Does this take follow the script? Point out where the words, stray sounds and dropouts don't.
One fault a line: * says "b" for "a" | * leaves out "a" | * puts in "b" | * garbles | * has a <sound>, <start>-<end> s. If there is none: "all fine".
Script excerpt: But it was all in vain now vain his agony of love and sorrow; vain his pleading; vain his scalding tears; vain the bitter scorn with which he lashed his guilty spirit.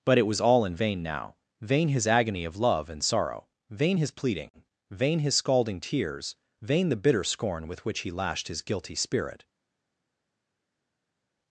all fine